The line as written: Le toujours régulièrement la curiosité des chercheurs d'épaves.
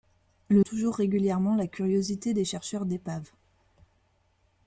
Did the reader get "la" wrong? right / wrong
right